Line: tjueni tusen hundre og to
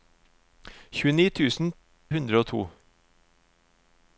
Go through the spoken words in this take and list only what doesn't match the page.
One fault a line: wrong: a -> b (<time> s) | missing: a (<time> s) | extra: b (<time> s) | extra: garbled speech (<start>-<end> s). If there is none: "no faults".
no faults